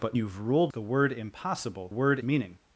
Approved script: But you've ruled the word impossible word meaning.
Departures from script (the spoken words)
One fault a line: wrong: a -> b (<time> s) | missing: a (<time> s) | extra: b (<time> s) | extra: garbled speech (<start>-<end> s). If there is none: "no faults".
no faults